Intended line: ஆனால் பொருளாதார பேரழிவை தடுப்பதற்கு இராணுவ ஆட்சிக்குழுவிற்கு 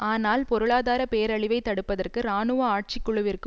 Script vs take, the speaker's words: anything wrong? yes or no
no